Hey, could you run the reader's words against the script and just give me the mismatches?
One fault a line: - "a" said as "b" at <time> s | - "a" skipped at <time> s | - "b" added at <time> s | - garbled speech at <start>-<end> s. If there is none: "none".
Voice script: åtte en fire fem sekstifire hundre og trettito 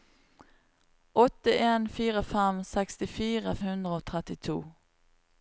none